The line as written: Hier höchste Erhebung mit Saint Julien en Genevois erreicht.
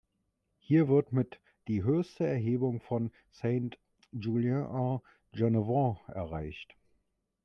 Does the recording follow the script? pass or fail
fail